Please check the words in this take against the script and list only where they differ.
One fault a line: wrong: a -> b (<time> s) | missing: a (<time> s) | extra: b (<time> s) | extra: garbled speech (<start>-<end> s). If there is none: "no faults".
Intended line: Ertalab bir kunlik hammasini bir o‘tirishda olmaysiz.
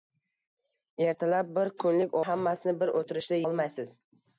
no faults